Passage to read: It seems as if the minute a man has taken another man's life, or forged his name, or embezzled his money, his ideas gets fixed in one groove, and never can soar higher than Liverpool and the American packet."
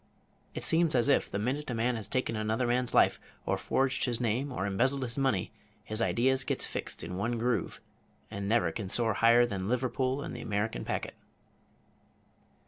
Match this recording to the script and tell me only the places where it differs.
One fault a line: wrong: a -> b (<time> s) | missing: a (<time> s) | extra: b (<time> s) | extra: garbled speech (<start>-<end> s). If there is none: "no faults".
no faults